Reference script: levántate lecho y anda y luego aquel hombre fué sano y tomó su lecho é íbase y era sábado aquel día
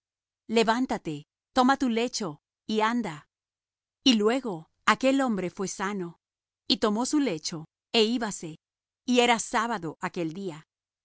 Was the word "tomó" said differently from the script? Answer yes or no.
no